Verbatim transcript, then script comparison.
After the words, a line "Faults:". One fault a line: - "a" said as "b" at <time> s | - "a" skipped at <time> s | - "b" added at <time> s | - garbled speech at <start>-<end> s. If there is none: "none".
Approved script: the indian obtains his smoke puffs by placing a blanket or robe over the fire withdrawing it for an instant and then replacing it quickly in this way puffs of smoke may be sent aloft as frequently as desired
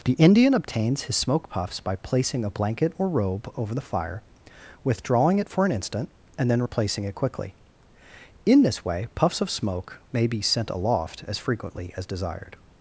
the indian obtains his smoke puffs by placing a blanket or robe over the fire withdrawing it for an instant and then replacing it quickly in this way puffs of smoke may be sent aloft as frequently as desired
Faults:
none